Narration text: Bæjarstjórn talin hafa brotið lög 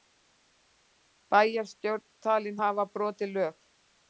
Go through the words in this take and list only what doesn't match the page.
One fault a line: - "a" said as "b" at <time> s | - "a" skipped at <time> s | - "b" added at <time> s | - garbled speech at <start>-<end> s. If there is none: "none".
none